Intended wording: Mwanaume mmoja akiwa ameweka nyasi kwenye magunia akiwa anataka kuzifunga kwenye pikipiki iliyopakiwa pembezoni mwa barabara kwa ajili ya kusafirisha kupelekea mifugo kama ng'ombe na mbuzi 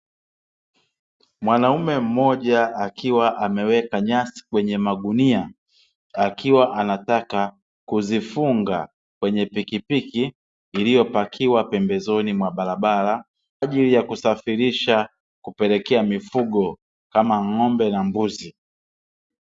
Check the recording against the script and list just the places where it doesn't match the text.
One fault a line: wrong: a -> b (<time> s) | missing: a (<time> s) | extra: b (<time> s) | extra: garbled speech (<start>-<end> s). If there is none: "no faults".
missing: kwa (13.2 s)